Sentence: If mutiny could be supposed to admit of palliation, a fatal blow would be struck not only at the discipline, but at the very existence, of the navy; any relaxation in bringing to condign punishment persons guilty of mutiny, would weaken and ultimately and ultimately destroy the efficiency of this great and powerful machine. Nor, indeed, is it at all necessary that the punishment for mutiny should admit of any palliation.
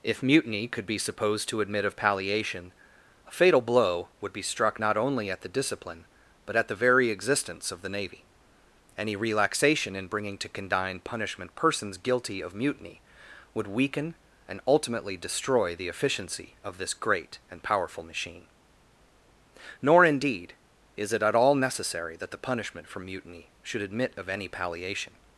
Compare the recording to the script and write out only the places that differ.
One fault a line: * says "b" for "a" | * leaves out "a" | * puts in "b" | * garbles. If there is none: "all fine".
* leaves out "and ultimately"